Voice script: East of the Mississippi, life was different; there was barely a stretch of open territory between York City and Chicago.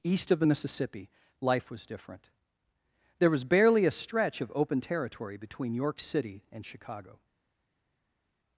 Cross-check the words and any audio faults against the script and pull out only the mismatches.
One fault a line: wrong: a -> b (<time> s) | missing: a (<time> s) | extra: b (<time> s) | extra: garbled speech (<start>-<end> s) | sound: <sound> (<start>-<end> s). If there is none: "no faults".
no faults